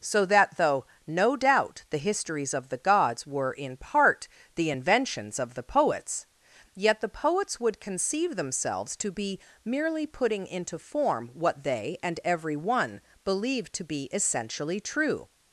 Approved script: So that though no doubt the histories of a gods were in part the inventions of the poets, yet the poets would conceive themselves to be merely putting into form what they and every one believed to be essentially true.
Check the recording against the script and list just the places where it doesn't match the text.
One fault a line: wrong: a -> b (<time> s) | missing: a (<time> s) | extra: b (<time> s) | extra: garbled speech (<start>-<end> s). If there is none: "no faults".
wrong: a -> the (2.7 s)